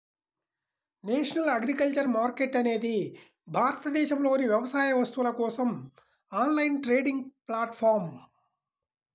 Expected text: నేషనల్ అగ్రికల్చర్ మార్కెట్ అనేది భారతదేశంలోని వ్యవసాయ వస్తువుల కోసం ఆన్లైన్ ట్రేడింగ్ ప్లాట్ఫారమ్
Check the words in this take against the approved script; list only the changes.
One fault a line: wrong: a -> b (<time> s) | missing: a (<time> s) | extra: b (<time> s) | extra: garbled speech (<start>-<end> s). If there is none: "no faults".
no faults